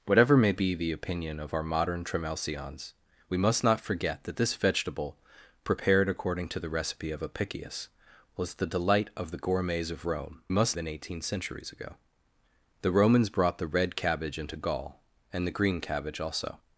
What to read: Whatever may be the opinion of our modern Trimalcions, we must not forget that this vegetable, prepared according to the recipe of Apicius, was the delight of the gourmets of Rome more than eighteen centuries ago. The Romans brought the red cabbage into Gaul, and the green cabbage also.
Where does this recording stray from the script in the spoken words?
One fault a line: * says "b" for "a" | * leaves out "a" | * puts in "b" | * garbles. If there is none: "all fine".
* says "must" for "more"